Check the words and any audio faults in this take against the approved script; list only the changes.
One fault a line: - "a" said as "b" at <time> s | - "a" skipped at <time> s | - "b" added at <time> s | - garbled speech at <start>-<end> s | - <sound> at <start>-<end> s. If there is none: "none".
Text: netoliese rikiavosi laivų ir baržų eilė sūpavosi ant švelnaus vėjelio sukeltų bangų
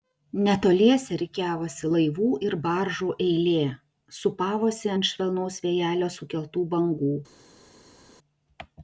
none